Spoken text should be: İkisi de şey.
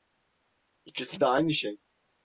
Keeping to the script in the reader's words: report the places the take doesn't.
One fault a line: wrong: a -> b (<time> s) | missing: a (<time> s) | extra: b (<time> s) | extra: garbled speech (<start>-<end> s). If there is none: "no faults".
extra: aynı (1.3 s)